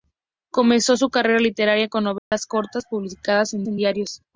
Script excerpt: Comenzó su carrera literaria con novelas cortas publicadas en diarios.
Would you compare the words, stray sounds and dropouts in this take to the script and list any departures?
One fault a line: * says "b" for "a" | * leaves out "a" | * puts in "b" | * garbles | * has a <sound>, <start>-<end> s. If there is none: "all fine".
* has a dropout, 2.2-2.3 s
* puts in "en"